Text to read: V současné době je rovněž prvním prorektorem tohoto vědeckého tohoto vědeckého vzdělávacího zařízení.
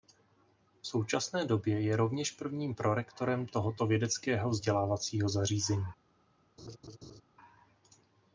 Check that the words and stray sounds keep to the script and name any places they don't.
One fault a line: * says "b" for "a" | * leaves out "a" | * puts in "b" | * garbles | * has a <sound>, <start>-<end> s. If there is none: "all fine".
* leaves out "tohoto vědeckého"
* has a laugh, 6.6-7.2 s